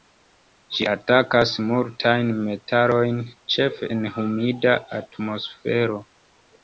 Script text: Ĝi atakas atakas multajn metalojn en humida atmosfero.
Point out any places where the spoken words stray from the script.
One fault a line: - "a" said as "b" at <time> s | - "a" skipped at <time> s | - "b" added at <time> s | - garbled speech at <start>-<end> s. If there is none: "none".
- "atakas" skipped at 1.5 s
- "ĉefe" added at 3.6 s